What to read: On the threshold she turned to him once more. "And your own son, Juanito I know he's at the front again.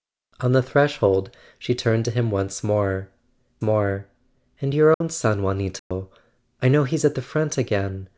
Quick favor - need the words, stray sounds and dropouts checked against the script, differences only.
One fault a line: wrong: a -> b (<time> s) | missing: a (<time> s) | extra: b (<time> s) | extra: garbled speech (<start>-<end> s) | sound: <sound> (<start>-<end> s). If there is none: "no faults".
extra: more (3.6 s)
sound: dropout (4.9-5.0 s)
sound: dropout (5.8-5.9 s)